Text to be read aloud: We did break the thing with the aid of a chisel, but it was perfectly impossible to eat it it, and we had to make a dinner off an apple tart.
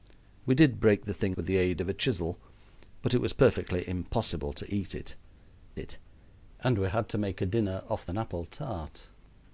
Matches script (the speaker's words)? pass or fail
pass